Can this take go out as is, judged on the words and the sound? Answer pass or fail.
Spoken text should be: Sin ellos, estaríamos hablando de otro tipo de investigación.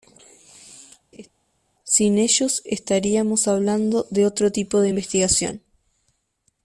fail